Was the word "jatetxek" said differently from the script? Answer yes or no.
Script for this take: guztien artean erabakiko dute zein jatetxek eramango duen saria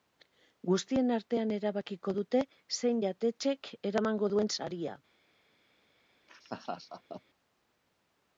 no